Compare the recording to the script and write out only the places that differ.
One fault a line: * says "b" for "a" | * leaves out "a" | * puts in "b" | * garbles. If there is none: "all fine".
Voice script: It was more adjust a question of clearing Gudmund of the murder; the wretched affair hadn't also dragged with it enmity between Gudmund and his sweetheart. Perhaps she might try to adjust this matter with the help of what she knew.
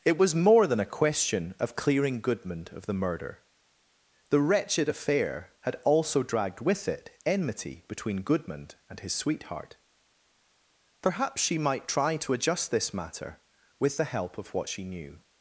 * says "than" for "adjust"
* says "had" for "hadn't"